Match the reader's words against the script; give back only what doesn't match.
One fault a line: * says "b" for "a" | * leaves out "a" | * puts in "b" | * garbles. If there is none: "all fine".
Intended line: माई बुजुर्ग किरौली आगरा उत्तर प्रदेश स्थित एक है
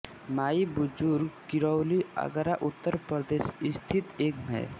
all fine